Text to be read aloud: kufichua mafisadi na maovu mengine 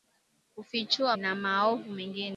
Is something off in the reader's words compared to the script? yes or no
yes